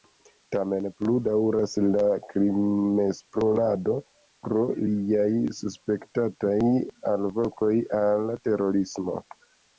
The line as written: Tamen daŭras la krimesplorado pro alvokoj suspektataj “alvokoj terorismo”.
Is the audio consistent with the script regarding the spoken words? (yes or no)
no